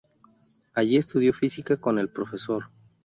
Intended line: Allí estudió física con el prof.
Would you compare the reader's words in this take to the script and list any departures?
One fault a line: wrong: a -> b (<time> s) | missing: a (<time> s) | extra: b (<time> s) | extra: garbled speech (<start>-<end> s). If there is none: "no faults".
no faults